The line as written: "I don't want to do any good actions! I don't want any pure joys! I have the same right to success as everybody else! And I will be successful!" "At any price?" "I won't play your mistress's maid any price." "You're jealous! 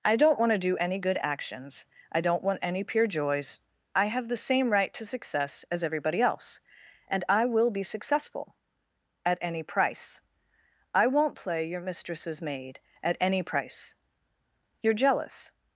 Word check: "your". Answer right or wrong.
right